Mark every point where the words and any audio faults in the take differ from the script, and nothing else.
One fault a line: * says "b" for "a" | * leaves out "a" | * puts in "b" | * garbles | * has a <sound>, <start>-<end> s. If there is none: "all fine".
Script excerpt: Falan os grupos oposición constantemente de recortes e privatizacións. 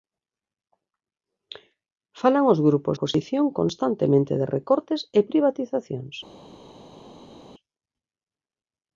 all fine